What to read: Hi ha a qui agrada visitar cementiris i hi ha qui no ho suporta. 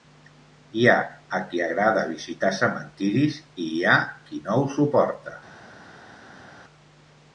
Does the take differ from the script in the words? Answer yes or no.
no